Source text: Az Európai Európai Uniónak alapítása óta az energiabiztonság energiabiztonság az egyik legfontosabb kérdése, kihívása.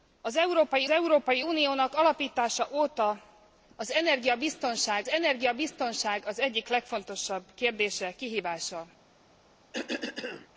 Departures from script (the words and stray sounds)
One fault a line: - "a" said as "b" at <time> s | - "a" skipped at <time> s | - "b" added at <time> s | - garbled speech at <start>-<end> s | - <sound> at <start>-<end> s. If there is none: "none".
- cough at 9.7-10.5 s